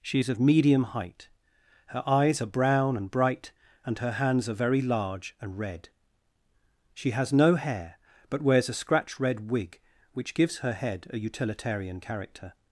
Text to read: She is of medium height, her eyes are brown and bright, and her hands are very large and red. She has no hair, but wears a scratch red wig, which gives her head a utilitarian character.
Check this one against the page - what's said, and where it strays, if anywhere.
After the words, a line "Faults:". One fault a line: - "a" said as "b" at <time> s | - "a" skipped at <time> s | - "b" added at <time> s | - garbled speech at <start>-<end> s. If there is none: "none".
She is of medium height, her eyes are brown and bright, and her hands are very large and red. She has no hair, but wears a scratch red wig, which gives her head a utilitarian character.
Faults:
none